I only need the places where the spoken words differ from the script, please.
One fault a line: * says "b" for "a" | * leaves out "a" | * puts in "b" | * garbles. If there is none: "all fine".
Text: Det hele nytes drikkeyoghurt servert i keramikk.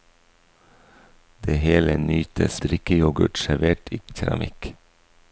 all fine